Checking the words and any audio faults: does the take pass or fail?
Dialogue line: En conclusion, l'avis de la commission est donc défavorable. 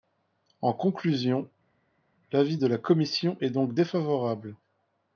pass